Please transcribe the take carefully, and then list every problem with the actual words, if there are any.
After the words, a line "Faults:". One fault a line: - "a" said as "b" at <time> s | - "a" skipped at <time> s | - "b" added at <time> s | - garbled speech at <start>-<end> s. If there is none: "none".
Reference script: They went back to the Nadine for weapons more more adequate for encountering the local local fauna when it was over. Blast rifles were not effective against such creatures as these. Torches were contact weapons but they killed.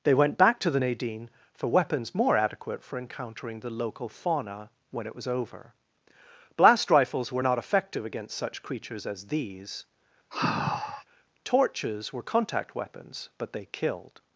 They went back to the Nadine for weapons more adequate for encountering the local fauna when it was over. Blast rifles were not effective against such creatures as these. Torches were contact weapons but they killed.
Faults:
- "more" skipped at 2.4 s
- "local" skipped at 4.1 s